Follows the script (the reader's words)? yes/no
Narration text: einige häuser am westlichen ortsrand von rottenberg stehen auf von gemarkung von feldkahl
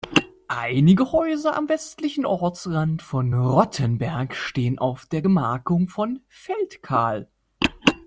no